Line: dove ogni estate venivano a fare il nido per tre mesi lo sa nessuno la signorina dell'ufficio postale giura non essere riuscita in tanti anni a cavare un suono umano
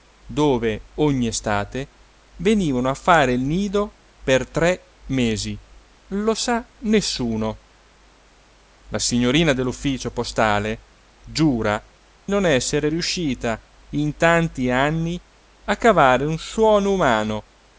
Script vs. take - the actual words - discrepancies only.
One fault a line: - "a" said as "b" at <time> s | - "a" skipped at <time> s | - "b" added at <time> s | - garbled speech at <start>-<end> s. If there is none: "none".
none